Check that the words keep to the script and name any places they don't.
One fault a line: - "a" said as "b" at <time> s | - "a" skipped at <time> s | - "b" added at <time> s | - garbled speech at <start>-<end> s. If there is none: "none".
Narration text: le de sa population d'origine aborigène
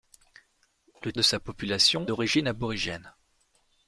none